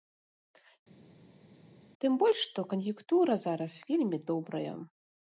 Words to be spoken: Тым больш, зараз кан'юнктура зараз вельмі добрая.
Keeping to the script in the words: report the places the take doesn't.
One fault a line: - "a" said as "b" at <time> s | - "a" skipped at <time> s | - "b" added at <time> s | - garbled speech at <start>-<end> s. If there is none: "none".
- "зараз" said as "што" at 2.5 s